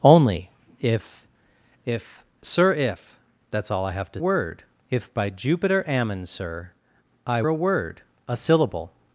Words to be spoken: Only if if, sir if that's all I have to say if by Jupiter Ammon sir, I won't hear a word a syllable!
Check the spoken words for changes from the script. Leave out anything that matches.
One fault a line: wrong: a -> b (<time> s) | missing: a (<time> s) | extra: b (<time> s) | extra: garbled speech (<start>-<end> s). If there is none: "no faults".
wrong: say -> word (4.2 s)
missing: won't hear (7.4 s)